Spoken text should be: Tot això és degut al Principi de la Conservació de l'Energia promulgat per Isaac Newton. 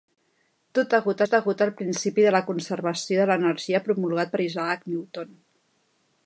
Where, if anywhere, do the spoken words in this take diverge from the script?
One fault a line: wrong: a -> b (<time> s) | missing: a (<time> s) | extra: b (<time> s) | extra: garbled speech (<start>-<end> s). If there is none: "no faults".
wrong: això -> degut (0.9 s)